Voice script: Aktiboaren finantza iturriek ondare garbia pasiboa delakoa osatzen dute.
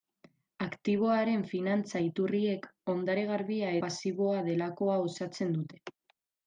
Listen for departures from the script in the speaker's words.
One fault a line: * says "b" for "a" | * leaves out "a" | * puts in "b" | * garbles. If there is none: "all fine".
all fine